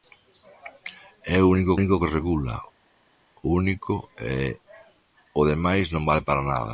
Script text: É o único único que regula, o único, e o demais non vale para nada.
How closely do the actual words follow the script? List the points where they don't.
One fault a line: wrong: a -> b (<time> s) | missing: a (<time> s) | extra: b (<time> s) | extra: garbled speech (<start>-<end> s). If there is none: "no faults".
no faults